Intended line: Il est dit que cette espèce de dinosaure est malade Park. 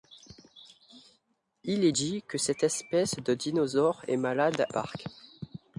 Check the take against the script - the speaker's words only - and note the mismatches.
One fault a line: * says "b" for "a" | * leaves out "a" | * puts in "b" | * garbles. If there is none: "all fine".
all fine